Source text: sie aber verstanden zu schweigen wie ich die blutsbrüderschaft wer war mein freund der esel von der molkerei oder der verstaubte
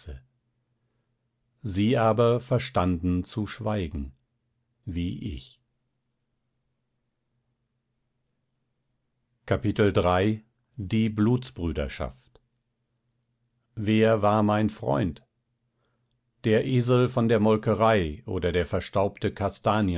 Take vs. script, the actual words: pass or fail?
pass